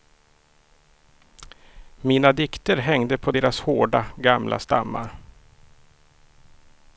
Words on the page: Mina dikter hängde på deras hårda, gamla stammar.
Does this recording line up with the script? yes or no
yes